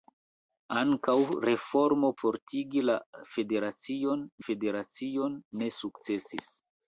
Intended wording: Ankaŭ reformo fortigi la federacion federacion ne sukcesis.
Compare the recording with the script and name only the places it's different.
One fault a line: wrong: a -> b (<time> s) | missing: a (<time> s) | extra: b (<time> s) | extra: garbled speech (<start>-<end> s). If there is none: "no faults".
no faults